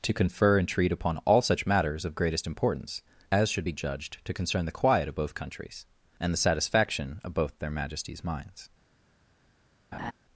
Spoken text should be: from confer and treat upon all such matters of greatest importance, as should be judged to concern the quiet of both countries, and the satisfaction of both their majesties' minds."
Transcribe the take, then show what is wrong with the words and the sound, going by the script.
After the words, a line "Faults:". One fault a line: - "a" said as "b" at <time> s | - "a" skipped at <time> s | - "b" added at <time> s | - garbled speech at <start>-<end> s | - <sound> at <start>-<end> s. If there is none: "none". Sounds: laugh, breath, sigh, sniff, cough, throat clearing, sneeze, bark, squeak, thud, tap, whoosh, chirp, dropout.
to confer and treat upon all such matters of greatest importance, as should be judged to concern the quiet of both countries, and the satisfaction of both their majesties' minds."
Faults:
- "from" said as "to" at 0.0 s
- laugh at 9.9-10.1 s